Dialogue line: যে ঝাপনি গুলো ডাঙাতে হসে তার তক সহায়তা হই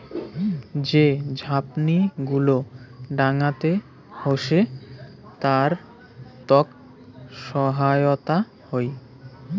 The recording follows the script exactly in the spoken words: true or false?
true